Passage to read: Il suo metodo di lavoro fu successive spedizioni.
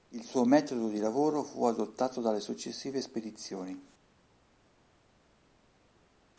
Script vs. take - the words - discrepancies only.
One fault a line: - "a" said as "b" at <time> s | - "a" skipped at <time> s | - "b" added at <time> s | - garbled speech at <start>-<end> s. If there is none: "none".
- "adottato dalle" added at 1.6 s